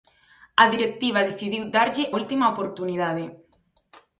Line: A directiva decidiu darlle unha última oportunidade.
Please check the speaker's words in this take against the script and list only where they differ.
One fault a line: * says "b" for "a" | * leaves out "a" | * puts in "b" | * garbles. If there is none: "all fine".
* leaves out "unha"